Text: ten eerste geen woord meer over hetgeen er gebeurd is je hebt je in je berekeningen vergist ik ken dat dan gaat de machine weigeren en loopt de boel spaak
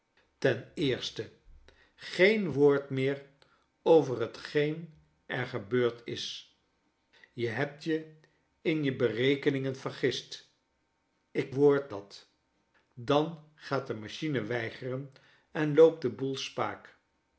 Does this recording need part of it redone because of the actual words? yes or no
yes